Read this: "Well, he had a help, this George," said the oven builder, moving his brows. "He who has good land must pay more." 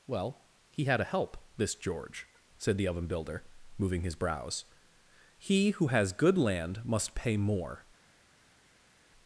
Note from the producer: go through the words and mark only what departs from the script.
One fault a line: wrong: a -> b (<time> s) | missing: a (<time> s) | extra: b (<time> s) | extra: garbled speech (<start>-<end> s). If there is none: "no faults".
no faults